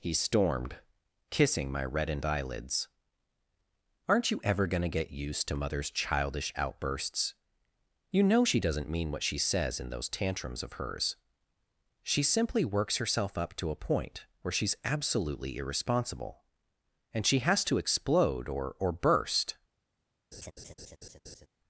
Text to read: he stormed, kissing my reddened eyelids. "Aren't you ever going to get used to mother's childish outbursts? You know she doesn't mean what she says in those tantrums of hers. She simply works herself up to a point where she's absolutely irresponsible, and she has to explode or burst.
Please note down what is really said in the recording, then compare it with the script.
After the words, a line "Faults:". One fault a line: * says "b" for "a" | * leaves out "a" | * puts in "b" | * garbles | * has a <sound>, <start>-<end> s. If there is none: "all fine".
he stormed, kissing my reddened eyelids. "Aren't you ever going to get used to mother's childish outbursts? You know she doesn't mean what she says in those tantrums of hers. She simply works herself up to a point where she's absolutely irresponsible, and she has to explode or or burst.
Faults:
* puts in "or"
* has a laugh, 20.3-21.5 s